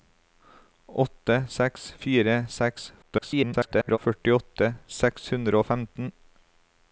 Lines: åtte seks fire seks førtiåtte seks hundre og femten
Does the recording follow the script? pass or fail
fail